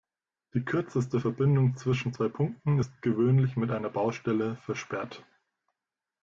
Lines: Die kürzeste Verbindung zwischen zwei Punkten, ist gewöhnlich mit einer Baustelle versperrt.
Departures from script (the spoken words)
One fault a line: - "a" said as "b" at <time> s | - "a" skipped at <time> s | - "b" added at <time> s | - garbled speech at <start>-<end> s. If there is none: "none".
none